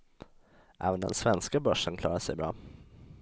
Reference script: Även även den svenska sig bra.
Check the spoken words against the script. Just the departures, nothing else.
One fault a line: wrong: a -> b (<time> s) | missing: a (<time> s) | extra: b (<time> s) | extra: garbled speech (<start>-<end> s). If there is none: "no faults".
missing: även (1.0 s)
extra: börsen klarar (1.6 s)